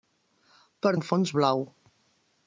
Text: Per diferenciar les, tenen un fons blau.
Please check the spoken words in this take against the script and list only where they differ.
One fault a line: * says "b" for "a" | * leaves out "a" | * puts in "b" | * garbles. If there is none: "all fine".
* leaves out "diferenciar les tenen"